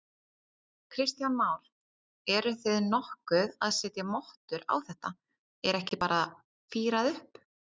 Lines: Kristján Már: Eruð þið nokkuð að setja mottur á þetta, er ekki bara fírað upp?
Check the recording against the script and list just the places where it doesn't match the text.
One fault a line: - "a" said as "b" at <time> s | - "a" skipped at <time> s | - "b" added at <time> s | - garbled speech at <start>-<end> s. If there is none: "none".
none